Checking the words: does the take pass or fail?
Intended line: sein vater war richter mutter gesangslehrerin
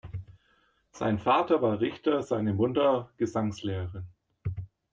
fail